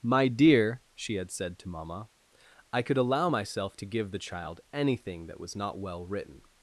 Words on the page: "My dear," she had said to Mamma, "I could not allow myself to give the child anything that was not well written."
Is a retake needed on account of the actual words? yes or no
yes